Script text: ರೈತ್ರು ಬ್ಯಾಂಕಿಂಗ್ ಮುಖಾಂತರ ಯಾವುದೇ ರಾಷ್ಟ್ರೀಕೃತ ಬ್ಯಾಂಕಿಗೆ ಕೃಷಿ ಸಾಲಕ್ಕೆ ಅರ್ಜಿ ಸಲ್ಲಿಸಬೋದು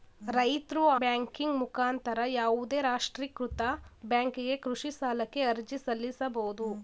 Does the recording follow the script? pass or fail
pass